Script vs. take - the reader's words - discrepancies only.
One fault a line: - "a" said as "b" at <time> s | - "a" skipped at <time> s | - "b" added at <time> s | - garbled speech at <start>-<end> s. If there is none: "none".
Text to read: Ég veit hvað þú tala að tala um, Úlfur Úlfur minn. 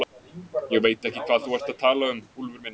- "ekki" added at 1.1 s
- "tala" said as "ert" at 1.6 s
- "Úlfur" skipped at 2.6 s